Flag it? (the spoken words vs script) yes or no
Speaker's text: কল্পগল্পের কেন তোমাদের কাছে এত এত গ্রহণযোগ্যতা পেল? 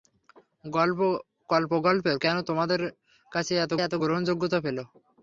no